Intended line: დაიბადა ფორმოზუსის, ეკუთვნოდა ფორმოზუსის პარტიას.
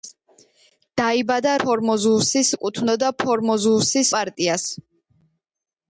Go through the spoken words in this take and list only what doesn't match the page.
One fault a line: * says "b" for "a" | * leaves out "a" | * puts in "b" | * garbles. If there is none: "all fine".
all fine